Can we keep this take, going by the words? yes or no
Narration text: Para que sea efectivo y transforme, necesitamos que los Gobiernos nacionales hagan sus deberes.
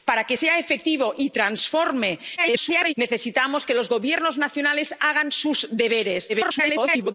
no